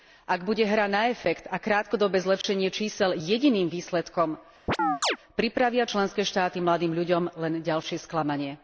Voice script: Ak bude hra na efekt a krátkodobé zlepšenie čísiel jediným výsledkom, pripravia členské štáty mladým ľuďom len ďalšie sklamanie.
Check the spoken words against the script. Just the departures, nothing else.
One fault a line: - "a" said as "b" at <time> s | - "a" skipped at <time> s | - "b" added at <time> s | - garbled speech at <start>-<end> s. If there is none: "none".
none